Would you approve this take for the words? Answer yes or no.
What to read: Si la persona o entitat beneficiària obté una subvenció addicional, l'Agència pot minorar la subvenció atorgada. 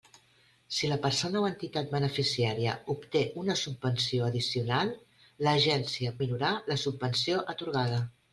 no